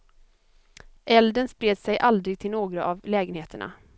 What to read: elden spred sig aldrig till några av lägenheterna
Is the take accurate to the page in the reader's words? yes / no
yes